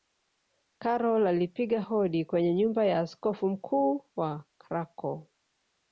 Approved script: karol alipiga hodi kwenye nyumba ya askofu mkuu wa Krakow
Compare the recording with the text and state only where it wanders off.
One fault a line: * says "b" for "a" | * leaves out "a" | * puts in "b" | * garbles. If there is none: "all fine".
all fine